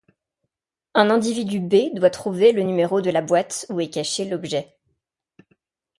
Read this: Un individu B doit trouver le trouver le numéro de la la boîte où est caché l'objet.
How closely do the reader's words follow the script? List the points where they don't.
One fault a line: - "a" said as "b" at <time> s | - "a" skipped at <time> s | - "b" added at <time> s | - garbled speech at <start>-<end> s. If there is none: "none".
- "trouver le" skipped at 2.6 s
- "la" skipped at 3.2 s